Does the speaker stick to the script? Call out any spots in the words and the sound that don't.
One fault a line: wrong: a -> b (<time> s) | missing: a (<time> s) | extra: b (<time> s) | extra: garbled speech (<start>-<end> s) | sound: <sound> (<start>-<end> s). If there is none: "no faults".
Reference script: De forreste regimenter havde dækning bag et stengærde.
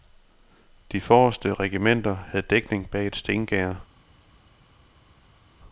no faults